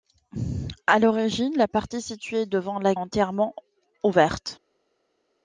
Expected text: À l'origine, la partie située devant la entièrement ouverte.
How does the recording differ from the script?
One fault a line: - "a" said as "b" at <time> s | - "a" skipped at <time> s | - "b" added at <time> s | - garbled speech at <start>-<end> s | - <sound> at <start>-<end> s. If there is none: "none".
none